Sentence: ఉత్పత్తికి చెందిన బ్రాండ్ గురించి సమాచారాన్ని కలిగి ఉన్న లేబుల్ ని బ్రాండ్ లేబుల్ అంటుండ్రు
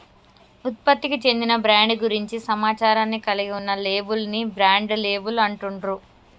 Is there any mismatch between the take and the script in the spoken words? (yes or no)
no